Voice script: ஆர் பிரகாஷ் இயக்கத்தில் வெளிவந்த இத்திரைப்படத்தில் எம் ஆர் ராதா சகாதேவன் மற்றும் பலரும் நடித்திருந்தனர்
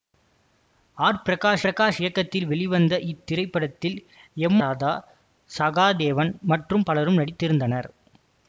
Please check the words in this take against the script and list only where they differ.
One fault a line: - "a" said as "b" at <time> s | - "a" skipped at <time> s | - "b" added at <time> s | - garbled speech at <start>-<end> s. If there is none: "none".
- "பிரகாஷ்" added at 1.6 s
- "ஆர்" skipped at 4.6 s